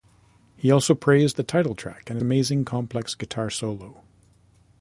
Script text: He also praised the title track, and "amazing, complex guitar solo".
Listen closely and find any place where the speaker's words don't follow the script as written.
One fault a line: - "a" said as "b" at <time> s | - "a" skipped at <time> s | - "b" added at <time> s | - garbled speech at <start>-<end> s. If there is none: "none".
none